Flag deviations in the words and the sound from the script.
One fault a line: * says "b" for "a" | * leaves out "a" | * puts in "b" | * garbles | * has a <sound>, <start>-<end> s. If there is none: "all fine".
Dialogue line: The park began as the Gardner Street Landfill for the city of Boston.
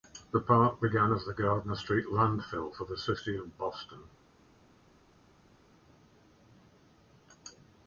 all fine